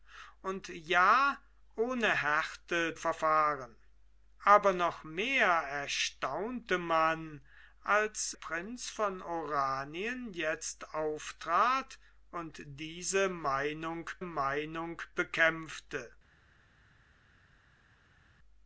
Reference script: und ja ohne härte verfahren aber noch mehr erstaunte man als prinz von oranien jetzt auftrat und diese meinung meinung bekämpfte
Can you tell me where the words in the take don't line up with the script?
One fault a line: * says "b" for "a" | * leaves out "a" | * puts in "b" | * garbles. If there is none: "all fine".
all fine